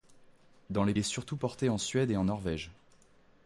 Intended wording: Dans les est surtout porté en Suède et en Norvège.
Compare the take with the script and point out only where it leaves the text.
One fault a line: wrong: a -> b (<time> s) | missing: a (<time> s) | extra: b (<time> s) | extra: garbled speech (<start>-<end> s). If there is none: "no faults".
no faults